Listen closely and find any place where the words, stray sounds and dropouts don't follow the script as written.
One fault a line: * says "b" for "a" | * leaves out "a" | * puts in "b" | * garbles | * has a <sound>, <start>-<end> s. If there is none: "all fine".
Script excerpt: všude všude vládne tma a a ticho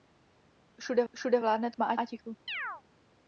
* has a chirp, 2.5-2.8 s